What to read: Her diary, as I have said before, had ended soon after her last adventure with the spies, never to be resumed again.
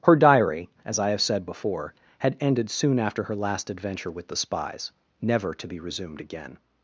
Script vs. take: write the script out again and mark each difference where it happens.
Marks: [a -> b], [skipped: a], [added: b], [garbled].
Her diary, as I have said before, had ended soon after her last adventure with the spies, never to be resumed again.